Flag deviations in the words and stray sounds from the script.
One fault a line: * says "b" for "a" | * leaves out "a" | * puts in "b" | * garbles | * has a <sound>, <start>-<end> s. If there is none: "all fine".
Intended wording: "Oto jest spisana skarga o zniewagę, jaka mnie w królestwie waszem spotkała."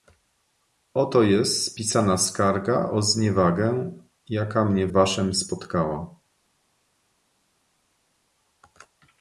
* leaves out "w królestwie"